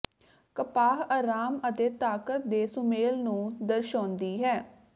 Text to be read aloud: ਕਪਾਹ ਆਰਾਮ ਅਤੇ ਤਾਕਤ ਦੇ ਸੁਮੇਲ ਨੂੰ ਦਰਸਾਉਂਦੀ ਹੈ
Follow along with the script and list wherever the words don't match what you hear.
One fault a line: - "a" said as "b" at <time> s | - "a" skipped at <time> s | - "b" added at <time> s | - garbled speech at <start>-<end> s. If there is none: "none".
none